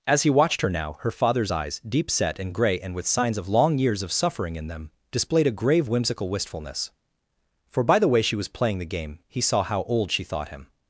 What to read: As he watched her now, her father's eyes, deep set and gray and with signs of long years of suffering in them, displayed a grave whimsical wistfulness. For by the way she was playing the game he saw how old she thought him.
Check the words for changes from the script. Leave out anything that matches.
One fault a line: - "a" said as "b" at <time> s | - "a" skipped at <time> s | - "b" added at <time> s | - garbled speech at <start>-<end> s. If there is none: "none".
none